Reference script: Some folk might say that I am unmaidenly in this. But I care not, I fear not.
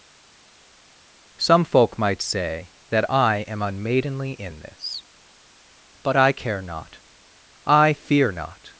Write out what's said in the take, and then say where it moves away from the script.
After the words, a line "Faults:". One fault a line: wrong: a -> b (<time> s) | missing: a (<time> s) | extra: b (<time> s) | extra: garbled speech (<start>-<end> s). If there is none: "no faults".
Some folk might say that I am unmaidenly in this. But I care not, I fear not.
Faults:
no faults